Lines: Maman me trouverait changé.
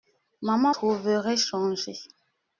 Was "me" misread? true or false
true